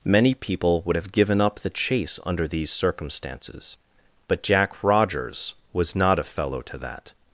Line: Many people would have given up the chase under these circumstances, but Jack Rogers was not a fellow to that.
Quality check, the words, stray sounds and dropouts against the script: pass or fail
pass